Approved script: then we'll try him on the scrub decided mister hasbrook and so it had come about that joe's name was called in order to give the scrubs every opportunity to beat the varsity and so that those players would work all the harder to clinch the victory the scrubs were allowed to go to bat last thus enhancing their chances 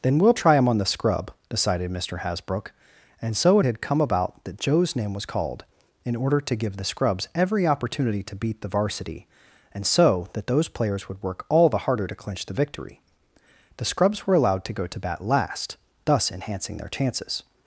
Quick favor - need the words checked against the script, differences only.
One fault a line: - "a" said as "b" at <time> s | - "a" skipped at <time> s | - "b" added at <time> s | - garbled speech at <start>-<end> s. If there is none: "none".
none